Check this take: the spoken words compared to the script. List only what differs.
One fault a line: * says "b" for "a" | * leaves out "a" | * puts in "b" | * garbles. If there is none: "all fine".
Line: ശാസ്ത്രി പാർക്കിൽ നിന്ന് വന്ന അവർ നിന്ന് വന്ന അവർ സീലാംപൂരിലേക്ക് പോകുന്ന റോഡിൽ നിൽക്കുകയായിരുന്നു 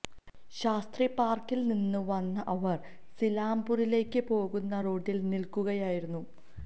* leaves out "നിന്ന് വന്ന അവർ"